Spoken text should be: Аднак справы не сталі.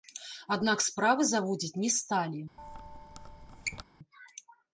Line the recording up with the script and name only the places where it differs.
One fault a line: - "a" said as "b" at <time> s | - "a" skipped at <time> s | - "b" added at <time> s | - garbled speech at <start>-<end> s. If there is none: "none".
- "заводзіць" added at 1.3 s